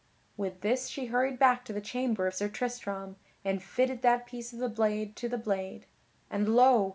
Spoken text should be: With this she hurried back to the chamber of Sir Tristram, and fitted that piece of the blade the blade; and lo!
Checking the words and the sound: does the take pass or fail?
fail